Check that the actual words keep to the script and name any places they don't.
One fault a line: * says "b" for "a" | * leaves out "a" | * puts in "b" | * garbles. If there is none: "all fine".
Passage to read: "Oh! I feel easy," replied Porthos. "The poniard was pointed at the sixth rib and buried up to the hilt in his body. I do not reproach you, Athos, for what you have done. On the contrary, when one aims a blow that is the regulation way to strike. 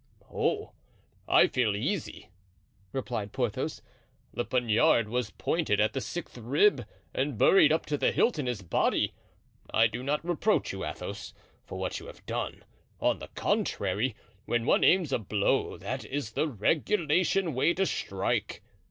all fine